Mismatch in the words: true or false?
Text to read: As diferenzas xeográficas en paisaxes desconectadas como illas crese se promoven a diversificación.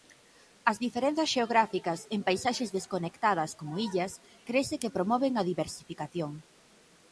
true